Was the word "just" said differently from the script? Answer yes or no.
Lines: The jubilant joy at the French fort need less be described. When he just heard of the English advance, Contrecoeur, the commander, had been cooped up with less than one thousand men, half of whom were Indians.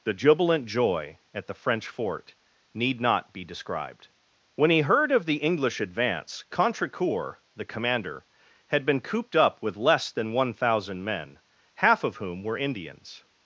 yes